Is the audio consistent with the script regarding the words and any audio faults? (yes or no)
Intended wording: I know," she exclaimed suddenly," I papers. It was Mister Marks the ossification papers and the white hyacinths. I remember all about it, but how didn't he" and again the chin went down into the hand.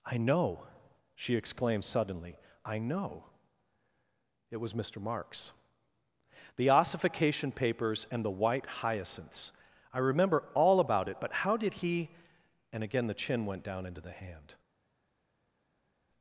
no